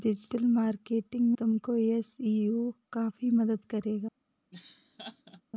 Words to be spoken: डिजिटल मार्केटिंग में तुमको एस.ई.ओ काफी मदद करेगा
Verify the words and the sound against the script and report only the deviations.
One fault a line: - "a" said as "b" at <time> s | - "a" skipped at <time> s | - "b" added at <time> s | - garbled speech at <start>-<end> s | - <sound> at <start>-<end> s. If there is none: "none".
- "में" skipped at 1.3 s
- laugh at 4.5-5.4 s